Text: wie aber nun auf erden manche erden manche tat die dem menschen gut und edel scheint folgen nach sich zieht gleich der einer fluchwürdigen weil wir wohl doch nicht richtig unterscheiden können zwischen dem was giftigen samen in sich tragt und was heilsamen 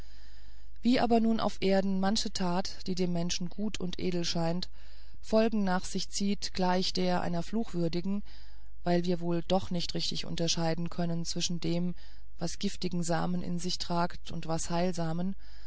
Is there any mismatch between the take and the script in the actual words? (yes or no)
yes